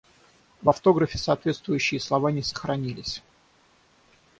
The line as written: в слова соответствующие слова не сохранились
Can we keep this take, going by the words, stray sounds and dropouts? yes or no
no